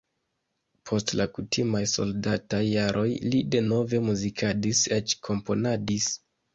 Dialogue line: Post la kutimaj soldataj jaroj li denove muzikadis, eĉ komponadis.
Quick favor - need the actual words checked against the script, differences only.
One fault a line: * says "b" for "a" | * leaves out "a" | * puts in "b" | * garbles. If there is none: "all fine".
all fine